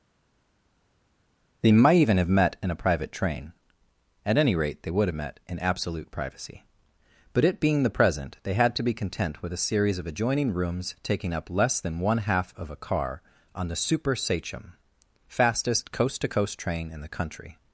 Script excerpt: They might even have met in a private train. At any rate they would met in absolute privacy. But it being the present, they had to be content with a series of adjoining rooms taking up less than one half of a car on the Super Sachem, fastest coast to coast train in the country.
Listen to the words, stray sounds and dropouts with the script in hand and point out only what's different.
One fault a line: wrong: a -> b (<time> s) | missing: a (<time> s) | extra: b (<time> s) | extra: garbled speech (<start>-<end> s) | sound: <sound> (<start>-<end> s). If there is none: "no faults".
no faults